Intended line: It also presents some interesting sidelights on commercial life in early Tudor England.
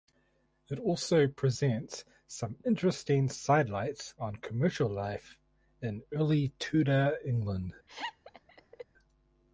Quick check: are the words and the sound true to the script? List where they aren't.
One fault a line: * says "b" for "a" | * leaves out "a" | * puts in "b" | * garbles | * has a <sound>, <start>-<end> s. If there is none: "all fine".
* has a laugh, 7.9-8.8 s